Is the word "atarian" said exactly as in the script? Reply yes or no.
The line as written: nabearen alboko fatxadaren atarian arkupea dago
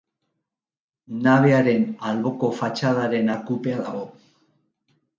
no